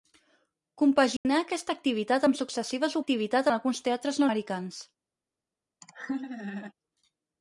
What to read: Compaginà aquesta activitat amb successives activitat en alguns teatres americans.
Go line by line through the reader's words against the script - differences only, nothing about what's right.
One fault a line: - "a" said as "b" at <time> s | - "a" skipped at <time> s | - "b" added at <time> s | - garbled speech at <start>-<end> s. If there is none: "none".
none